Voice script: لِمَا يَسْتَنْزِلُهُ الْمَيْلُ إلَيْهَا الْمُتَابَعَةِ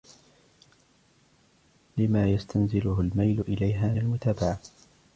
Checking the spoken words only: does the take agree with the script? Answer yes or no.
yes